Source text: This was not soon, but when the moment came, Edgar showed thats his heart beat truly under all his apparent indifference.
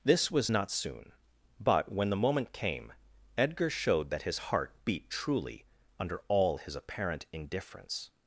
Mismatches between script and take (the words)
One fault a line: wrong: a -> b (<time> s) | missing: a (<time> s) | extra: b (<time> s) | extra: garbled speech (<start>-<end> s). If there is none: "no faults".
wrong: thats -> that (4.1 s)